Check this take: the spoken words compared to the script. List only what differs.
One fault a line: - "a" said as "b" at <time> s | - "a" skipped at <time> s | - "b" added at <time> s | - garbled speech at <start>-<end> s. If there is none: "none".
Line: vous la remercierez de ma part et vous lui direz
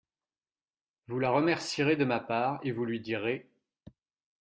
none